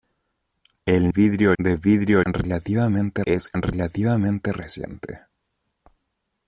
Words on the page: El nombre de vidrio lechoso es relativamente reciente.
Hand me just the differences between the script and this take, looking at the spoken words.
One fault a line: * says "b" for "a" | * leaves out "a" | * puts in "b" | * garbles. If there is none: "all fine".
* says "vidrio" for "nombre"
* says "relativamente" for "lechoso"